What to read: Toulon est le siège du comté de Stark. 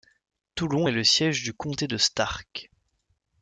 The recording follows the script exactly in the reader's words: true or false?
true